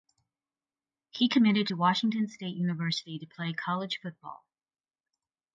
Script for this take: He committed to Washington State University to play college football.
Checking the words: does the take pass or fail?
pass